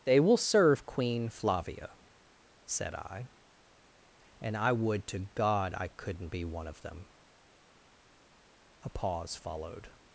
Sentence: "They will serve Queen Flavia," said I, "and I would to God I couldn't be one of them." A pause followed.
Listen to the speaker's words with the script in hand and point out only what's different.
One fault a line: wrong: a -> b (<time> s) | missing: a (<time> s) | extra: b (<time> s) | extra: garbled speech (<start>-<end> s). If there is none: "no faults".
no faults